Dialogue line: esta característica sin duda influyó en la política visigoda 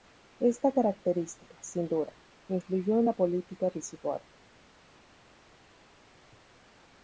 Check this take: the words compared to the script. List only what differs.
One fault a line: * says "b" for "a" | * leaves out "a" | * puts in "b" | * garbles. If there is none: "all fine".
all fine